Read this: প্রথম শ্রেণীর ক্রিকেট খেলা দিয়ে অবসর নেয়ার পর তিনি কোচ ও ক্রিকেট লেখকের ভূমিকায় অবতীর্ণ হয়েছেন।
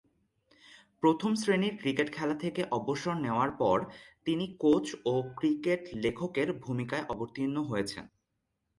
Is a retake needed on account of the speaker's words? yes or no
yes